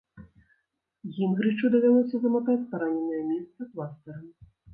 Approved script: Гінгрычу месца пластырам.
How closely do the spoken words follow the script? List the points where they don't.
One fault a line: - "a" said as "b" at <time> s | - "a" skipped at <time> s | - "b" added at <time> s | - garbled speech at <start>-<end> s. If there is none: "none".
- "давялося заматаць параненае" added at 1.8 s